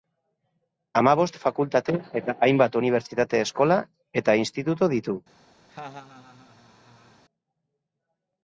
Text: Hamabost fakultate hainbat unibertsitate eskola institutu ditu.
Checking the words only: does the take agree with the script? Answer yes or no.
no